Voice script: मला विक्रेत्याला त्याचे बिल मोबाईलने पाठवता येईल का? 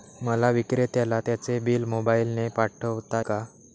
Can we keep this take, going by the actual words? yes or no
no